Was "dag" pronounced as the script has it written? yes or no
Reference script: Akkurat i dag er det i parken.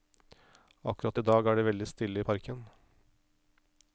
yes